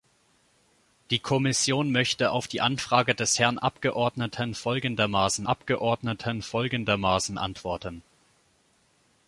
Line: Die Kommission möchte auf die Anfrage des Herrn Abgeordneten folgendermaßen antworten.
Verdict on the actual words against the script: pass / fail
fail